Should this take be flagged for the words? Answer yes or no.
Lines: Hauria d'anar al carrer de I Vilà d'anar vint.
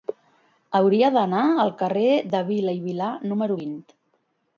yes